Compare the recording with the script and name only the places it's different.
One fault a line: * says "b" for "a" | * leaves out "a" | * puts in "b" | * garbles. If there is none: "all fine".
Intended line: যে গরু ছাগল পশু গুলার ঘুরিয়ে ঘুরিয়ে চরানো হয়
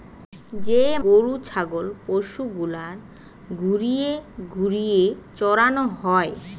all fine